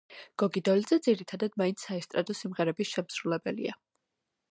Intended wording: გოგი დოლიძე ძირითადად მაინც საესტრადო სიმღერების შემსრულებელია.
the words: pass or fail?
pass